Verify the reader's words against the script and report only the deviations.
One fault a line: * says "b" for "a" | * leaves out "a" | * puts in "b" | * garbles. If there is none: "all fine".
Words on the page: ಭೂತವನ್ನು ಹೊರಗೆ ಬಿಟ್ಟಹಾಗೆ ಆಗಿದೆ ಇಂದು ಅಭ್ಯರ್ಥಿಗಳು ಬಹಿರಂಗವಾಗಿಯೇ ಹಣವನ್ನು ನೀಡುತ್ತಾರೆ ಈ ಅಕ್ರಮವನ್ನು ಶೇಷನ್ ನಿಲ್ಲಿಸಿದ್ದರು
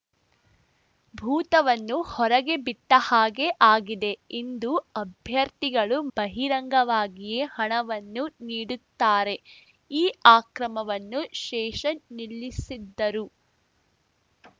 all fine